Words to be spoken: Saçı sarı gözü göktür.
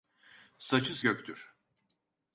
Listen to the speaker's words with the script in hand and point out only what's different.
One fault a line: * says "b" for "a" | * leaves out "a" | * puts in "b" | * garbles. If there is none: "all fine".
* leaves out "sarı gözü"